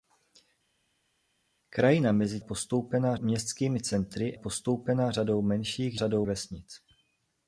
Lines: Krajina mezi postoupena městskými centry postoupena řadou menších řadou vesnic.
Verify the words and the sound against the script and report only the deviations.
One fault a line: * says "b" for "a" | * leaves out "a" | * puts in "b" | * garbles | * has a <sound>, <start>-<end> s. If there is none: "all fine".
all fine